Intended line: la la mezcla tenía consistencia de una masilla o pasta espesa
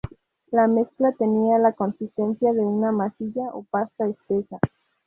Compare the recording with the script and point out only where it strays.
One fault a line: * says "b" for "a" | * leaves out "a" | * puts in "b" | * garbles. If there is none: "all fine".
* leaves out "la"
* puts in "la"